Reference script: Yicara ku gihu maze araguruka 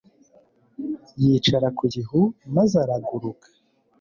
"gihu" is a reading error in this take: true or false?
false